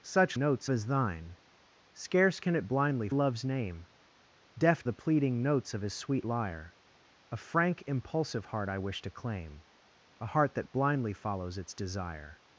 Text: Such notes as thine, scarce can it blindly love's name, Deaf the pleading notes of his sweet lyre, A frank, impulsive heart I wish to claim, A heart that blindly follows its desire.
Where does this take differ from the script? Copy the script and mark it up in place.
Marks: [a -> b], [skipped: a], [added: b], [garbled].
Such notes as thine, scarce can it blindly love's name, Deaf the pleading notes of his sweet lyre, A frank, impulsive heart I wish to claim, A heart that blindly follows its desire.